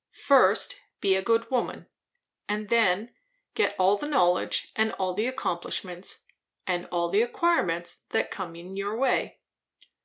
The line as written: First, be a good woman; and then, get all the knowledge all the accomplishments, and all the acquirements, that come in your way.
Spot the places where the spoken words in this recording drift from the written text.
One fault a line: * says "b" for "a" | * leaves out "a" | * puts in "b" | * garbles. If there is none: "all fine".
* puts in "and"